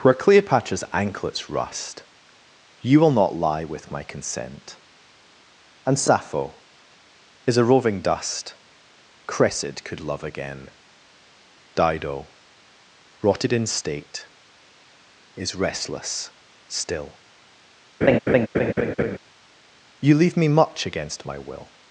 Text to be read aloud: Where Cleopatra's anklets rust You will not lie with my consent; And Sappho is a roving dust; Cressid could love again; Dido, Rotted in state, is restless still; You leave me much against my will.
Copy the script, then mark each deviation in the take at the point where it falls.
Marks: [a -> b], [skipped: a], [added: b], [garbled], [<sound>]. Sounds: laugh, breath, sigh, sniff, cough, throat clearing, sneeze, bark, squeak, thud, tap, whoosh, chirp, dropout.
Where Cleopatra's anklets rust You will not lie with my consent; And Sappho is a roving dust; Cressid could love again; Dido, Rotted in state, is restless still; [laugh] You leave me much against my will.